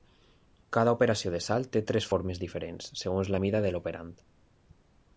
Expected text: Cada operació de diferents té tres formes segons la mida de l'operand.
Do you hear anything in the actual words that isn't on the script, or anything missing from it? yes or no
yes